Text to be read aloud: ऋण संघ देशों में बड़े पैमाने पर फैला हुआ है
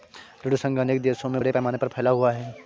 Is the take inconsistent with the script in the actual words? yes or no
yes